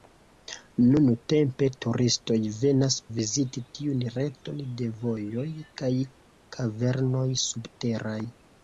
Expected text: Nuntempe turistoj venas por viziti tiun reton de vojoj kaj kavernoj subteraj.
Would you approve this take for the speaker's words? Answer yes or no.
no